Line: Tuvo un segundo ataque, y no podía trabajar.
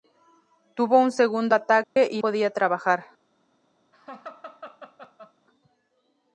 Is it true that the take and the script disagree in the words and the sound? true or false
true